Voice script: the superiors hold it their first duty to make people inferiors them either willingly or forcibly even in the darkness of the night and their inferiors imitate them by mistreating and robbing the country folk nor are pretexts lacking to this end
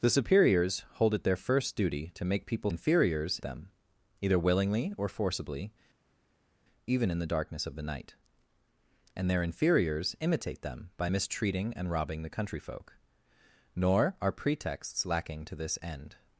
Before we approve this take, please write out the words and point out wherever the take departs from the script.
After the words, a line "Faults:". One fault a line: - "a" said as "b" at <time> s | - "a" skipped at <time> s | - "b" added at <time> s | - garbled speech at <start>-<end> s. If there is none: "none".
the superiors hold it their first duty to make people inferiors them either willingly or forcibly even in the darkness of the night and their inferiors imitate them by mistreating and robbing the country folk nor are pretexts lacking to this end
Faults:
none